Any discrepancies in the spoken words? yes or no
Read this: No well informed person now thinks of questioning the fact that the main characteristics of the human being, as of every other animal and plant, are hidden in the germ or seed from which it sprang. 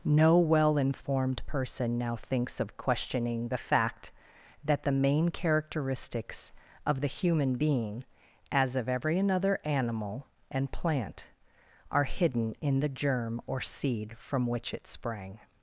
yes